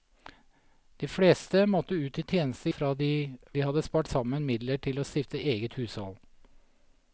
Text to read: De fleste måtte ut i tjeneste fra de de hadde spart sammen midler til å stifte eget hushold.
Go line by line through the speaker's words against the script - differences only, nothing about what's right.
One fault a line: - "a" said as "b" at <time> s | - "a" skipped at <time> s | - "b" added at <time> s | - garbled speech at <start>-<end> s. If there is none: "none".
none